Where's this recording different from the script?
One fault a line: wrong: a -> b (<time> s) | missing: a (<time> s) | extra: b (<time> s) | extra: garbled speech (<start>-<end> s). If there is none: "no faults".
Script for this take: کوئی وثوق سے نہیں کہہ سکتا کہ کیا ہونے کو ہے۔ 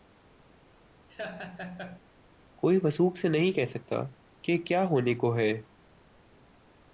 no faults